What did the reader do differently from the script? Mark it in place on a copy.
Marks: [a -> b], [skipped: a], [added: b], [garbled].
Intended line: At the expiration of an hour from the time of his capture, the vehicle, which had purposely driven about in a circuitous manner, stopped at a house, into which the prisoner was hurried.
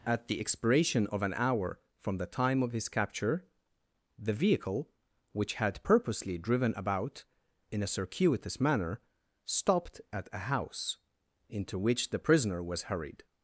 At the expiration of an hour from the time of his capture, the vehicle, which had purposely driven about in a circuitous manner, stopped at a house, into which the prisoner was hurried.